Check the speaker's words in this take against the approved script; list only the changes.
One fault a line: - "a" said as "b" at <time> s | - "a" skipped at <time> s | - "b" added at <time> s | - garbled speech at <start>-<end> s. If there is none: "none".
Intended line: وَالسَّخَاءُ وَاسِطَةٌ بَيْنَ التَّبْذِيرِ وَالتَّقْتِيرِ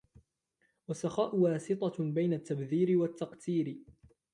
none